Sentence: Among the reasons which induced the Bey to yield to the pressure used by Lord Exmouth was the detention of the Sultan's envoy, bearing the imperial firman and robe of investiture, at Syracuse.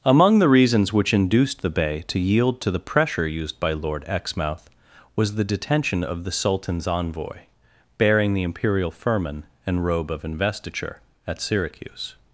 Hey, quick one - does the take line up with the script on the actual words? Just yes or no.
yes